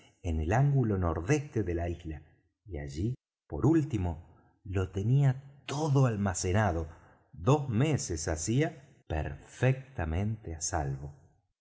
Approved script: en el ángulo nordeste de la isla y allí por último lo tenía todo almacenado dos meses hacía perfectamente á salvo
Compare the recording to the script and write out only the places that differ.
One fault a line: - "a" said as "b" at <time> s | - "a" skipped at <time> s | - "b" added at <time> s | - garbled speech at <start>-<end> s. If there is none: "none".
none